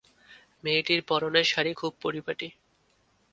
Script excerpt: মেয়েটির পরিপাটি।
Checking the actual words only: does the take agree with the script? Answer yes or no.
no